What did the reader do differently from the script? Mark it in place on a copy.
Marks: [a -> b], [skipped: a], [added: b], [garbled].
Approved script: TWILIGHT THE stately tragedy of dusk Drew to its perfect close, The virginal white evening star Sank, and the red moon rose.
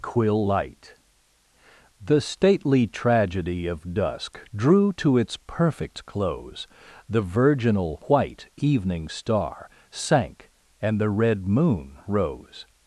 [TWILIGHT -> Quill light] THE stately tragedy of dusk Drew to its perfect close, The virginal white evening star Sank, and the red moon rose.